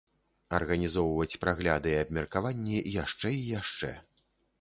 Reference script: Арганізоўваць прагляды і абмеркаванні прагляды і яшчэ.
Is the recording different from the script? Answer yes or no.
yes